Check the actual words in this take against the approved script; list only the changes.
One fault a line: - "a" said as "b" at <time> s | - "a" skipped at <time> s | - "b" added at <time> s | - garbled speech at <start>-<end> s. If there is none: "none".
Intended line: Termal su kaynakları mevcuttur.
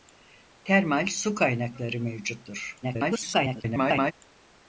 - garbled speech at 2.8-4.1 s